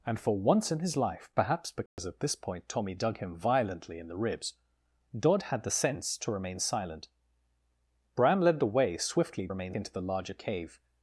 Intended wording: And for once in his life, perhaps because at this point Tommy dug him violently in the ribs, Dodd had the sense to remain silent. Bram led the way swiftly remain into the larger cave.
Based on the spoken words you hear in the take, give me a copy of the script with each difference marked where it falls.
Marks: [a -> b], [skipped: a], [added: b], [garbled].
And for once in his life, perhaps because at this point Tommy dug him violently in the ribs, Dodd had the sense to remain silent. Bram led the way swiftly remain into the larger cave.